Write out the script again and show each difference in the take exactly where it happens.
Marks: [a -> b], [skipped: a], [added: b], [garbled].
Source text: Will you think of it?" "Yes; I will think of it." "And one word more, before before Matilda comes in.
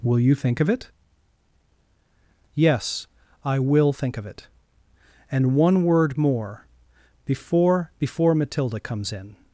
Will you think of it?" "Yes; I will think of it." "And one word more, before before Matilda comes in.